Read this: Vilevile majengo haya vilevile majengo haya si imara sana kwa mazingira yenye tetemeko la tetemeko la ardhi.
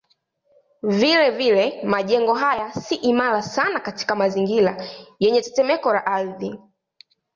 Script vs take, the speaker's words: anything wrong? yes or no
yes